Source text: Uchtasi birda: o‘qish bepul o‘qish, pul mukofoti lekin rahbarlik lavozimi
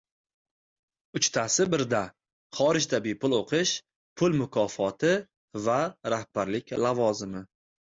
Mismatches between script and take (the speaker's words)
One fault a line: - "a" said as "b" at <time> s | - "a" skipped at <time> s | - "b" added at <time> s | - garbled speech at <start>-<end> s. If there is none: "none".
- "o‘qish" said as "xorijda" at 2.6 s
- "lekin" said as "va" at 5.7 s